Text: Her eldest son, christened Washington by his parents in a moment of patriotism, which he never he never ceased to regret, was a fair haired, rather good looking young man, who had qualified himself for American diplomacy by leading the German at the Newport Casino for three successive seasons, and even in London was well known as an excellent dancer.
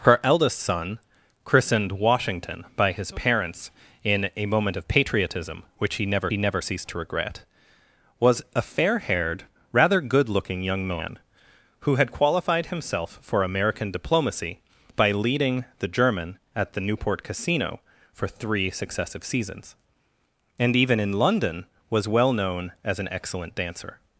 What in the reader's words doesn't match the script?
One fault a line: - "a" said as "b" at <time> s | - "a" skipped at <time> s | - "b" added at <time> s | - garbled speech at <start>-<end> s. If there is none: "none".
none